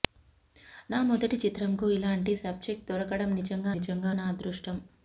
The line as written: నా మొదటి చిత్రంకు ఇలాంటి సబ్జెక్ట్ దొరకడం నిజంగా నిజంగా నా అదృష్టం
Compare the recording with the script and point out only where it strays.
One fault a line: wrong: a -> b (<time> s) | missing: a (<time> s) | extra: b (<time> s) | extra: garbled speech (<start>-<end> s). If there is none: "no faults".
no faults